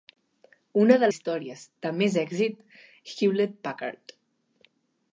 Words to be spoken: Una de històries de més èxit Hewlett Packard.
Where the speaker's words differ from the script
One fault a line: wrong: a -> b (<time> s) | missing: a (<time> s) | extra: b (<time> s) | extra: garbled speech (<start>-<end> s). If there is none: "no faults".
no faults